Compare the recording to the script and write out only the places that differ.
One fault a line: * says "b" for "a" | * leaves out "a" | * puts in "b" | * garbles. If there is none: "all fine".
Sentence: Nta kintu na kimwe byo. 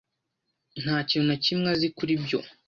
* puts in "azi kuri"